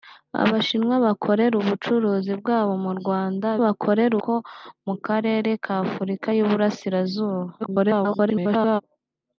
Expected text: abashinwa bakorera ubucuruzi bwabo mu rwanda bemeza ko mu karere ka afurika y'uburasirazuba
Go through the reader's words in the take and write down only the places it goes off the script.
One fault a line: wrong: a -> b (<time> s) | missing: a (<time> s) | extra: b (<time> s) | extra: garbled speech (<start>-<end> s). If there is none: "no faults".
wrong: bemeza -> bakorera (3.6 s)
extra: garbled speech (7.6-8.8 s)